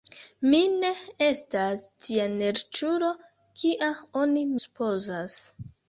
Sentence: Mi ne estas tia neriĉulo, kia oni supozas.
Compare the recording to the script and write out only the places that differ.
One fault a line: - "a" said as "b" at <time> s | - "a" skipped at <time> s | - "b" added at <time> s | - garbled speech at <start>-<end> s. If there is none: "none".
none